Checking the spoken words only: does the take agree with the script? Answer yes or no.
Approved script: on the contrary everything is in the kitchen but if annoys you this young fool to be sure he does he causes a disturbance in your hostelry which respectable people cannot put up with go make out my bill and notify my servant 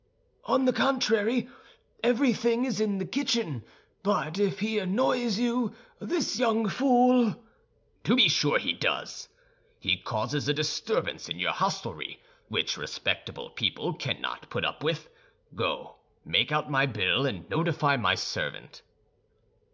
no